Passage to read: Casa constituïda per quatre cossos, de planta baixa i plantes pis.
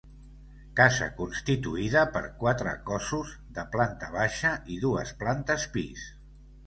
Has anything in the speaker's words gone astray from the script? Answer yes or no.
yes